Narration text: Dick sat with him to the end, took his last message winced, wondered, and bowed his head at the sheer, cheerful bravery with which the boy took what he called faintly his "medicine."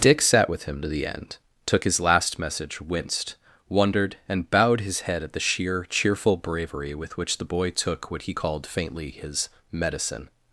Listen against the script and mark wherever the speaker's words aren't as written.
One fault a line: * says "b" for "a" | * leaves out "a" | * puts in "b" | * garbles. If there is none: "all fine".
all fine